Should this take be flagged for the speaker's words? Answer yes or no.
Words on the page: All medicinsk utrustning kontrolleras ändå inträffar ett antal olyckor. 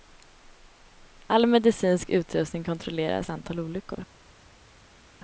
yes